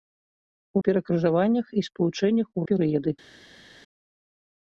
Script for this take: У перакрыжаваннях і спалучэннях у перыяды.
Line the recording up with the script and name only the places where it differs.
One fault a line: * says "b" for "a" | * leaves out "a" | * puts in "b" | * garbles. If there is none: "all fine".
all fine